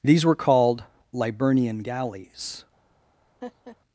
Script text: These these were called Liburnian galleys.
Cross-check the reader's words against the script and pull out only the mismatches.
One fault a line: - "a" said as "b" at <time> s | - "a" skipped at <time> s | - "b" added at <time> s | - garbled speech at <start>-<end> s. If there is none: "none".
- "these" skipped at 0.2 s